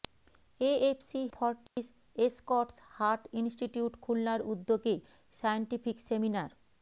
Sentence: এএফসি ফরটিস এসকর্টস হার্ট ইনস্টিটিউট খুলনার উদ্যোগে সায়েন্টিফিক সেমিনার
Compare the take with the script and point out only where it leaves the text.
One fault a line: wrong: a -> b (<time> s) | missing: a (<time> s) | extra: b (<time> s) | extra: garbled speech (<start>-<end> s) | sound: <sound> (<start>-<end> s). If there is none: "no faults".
sound: dropout (1.7-1.8 s)